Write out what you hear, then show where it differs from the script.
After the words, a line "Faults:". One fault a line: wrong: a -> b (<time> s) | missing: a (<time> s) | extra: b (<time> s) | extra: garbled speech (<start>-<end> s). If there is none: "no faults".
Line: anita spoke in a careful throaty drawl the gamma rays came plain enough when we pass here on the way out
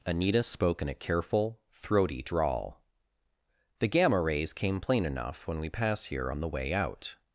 anita spoke in a careful throaty drawl the gamma rays came plain enough when we pass here on the way out
Faults:
no faults